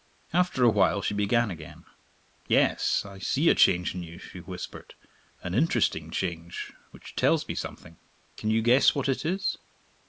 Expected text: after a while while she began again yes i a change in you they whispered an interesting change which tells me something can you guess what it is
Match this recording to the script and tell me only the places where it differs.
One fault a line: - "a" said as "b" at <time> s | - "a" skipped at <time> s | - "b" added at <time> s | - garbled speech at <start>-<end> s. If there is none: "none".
- "while" skipped at 1.0 s
- "see" added at 3.2 s
- "they" said as "she" at 4.2 s